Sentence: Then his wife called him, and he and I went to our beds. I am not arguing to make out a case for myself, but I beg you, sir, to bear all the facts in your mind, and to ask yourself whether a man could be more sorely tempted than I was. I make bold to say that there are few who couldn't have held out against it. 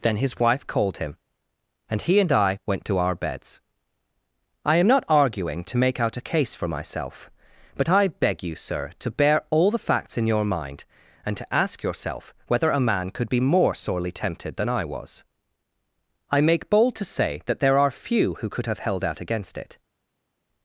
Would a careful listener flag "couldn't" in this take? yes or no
yes